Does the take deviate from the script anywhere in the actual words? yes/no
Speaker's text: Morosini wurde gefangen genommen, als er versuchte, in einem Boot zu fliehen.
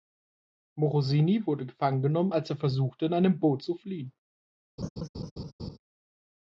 no